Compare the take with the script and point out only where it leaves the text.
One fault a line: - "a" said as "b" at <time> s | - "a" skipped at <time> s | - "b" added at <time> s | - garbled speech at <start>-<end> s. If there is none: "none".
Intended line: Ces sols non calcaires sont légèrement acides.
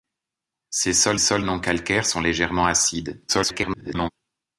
- "sols" added at 1.2 s
- garbled speech at 3.3-4.1 s